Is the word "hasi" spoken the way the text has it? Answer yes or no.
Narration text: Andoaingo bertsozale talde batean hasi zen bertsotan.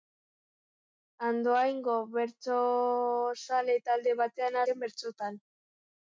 no